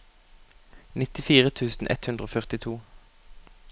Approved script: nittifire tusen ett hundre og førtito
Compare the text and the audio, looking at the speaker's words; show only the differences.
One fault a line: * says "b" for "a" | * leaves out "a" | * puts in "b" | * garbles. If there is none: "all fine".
all fine